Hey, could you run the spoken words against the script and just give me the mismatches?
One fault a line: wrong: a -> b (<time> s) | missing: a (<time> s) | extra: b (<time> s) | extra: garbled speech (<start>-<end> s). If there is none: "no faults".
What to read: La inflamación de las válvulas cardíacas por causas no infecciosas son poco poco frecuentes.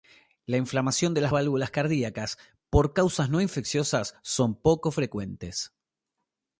missing: poco (4.9 s)